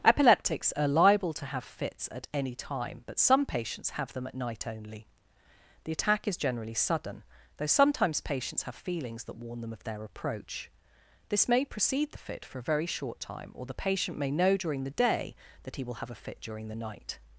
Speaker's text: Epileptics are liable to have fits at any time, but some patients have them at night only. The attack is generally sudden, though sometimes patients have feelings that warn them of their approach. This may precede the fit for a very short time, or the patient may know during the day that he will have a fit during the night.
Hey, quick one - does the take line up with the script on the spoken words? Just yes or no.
yes